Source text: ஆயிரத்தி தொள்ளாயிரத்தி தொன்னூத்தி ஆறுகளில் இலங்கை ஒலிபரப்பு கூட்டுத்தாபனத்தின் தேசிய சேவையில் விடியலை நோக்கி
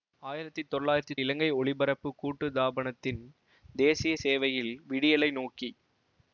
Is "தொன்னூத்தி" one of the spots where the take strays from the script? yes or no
yes